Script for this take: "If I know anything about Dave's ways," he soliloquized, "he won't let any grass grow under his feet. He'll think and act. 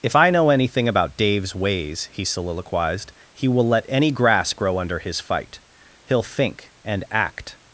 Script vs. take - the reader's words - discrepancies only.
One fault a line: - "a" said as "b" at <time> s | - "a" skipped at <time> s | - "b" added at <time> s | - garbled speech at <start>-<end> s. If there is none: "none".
- "won't" said as "will" at 3.5 s
- "feet" said as "fight" at 5.2 s